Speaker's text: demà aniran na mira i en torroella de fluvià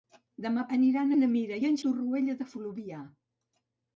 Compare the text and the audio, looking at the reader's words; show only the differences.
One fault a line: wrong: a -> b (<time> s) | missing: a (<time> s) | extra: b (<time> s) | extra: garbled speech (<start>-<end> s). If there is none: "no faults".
no faults